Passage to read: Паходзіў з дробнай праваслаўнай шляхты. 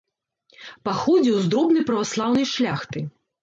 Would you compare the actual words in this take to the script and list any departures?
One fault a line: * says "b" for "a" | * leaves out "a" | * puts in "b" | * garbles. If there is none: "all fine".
all fine